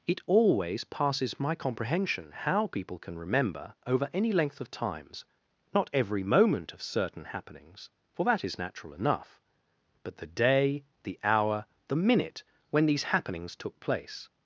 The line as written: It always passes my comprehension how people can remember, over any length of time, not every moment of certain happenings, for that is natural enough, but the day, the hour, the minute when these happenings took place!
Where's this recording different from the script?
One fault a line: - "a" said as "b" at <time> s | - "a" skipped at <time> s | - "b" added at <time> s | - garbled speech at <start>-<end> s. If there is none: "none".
- "time" said as "times" at 4.7 s